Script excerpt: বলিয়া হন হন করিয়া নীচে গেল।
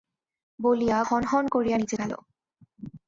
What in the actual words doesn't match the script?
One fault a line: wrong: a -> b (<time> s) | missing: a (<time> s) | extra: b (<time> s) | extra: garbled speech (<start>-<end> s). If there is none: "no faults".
no faults